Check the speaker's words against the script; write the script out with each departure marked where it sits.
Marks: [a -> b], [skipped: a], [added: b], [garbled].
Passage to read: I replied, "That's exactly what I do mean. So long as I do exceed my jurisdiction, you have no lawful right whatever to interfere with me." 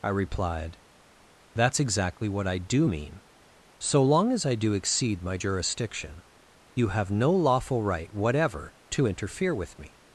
I replied, "That's exactly what I do mean. So long as I do exceed my jurisdiction, you have no lawful right whatever to interfere with me."